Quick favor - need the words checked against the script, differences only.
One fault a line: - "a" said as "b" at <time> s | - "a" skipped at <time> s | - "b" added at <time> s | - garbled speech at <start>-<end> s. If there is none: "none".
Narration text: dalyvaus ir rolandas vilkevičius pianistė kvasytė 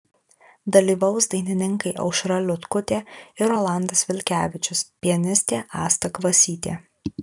- "dainininkai aušra liutkutė" added at 1.3 s
- "asta" added at 5.9 s